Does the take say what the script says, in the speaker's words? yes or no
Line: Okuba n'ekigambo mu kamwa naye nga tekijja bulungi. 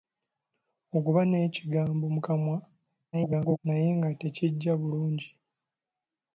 no